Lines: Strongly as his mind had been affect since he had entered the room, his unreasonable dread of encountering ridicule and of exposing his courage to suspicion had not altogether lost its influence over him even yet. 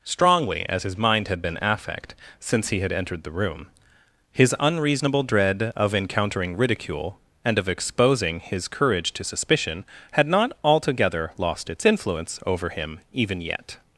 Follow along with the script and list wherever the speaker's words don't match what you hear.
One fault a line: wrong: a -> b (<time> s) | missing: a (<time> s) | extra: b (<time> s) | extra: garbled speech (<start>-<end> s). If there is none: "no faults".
no faults